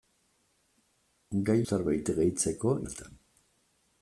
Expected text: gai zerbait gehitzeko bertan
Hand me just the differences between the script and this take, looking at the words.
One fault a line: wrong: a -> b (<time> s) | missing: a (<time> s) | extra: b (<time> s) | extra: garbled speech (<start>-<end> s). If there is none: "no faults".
no faults